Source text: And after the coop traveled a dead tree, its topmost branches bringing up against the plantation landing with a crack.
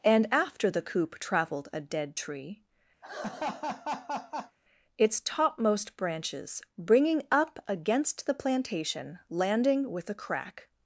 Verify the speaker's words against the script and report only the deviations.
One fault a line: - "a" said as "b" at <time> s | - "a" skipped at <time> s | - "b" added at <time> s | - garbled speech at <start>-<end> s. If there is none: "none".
none